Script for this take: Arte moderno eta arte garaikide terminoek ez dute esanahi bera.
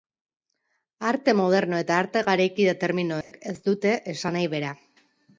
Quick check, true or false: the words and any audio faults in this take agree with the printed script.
false